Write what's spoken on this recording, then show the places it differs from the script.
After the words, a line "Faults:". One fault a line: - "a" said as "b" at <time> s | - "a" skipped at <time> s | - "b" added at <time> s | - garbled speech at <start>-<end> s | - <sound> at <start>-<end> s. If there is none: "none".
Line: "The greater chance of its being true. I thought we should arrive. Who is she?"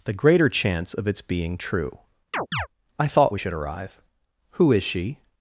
"The greater chance of its being true. I thought we should arrive. Who is she?"
Faults:
- chirp at 2.3-2.7 s